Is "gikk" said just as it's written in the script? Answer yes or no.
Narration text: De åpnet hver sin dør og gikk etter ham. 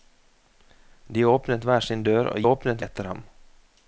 no